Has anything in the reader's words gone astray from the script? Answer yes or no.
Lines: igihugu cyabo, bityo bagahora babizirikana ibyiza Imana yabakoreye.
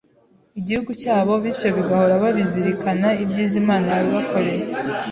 no